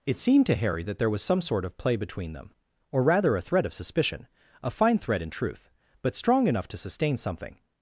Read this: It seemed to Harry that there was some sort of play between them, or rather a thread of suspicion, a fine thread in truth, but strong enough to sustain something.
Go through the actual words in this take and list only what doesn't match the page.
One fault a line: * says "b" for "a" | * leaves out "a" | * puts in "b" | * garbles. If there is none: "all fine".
all fine